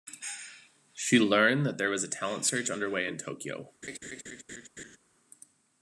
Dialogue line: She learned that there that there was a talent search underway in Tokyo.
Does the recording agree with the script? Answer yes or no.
no